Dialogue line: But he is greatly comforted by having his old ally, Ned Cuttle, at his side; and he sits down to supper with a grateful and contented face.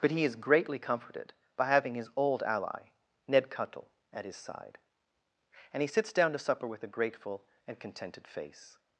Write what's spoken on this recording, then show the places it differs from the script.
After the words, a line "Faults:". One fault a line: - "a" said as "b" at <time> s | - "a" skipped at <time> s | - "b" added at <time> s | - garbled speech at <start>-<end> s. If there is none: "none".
But he is greatly comforted by having his old ally, Ned Cuttle, at his side; and he sits down to supper with a grateful and contented face.
Faults:
none